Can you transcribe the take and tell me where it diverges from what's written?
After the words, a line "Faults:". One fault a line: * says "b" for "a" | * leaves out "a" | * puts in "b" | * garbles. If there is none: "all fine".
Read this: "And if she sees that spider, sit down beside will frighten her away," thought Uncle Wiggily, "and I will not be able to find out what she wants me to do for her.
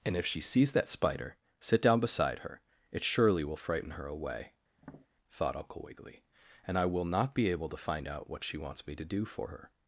"And if she sees that spider, sit down beside her, it surely will frighten her away," thought Uncle Wiggily, "and I will not be able to find out what she wants me to do for her.
Faults:
* puts in "her it surely"